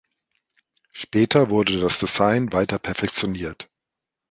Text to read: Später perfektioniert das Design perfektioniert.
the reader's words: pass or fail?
fail